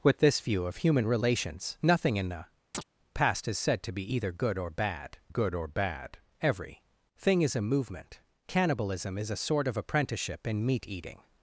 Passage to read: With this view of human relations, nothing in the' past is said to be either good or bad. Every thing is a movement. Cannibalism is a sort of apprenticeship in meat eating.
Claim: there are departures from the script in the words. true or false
true